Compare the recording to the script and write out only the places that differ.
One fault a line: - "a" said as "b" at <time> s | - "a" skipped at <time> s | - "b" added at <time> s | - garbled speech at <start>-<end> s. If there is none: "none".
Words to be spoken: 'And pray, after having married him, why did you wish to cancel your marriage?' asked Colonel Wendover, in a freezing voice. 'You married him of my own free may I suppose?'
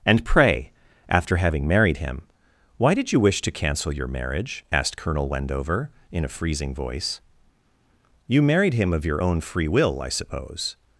- "my" said as "your" at 9.0 s
- "may" said as "will" at 9.7 s